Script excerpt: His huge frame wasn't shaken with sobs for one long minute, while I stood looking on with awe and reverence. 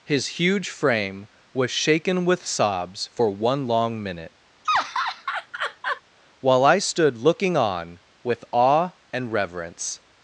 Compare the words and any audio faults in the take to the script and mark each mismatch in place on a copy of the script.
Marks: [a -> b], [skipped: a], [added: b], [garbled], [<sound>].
His huge frame [wasn't -> was] shaken with sobs for one long minute, [laugh] while I stood looking on with awe and reverence.